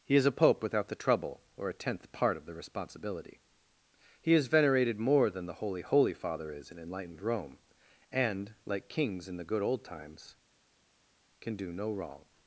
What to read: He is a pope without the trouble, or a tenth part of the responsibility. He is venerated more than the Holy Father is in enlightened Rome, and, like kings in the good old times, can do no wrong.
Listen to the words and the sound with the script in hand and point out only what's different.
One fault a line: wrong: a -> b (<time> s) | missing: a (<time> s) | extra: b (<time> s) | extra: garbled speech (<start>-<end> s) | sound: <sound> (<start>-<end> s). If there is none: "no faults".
extra: Holy (5.8 s)